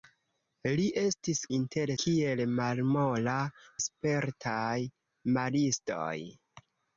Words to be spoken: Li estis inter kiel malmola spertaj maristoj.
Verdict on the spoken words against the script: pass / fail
pass